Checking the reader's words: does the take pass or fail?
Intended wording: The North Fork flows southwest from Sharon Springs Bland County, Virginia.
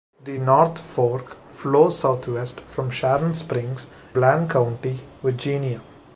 pass